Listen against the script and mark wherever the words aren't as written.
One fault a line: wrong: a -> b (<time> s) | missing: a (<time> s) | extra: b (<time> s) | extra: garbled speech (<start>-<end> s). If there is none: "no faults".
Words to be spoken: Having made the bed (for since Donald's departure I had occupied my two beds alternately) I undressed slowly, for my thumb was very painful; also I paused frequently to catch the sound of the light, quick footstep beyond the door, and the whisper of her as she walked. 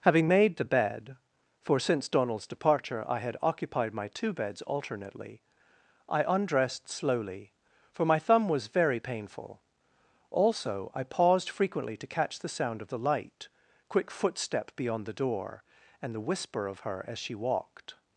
no faults